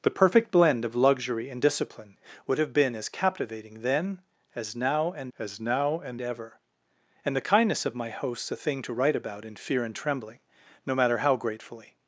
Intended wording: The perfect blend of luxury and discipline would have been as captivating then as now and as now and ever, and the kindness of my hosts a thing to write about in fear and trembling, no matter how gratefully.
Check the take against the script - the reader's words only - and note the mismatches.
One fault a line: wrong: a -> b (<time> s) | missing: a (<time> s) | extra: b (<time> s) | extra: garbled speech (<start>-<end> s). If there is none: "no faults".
no faults